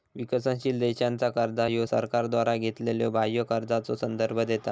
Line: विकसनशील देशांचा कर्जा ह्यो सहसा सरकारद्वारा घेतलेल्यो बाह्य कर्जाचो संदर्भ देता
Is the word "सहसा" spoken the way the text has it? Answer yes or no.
no